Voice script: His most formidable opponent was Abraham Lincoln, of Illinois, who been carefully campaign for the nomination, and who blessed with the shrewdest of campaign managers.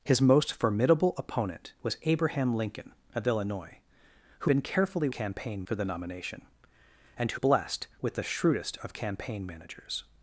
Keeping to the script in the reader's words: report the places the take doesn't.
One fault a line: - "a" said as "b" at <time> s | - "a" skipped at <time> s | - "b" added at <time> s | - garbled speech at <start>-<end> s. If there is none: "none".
none